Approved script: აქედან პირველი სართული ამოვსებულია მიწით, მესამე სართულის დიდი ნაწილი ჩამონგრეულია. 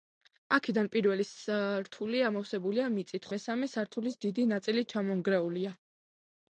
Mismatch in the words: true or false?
false